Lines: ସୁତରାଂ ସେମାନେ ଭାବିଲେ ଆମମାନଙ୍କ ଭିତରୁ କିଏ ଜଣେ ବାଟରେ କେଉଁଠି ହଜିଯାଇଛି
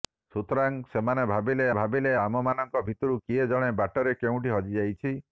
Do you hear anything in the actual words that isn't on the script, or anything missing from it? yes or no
yes